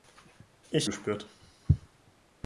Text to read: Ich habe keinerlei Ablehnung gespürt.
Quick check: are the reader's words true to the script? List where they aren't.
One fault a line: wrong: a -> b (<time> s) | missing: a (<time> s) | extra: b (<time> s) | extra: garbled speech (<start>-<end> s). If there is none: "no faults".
missing: habe keinerlei Ablehnung (0.9 s)